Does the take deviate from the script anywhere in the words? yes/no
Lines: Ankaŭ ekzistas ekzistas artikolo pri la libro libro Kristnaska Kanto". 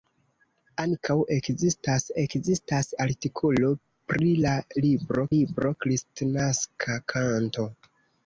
no